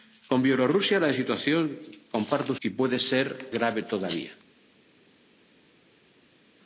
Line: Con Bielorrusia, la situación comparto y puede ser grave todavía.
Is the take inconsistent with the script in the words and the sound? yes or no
no